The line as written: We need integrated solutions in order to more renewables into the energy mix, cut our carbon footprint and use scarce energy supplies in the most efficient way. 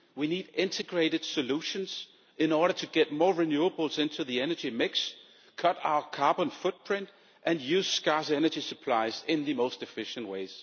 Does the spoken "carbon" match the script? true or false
true